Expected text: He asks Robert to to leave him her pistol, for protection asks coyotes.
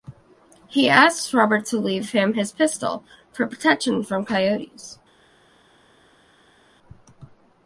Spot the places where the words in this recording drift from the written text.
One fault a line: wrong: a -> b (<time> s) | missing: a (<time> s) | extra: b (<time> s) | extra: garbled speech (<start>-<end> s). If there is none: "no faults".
missing: to (1.8 s)
wrong: her -> his (2.3 s)
wrong: asks -> from (4.0 s)